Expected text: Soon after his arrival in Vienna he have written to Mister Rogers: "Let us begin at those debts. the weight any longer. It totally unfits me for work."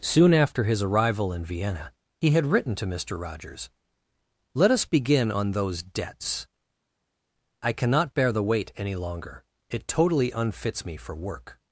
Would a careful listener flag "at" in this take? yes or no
yes